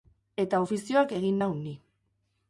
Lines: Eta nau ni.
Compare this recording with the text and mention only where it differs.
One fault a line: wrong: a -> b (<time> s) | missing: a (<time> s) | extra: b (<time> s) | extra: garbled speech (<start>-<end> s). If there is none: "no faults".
extra: ofizioak egin (0.6 s)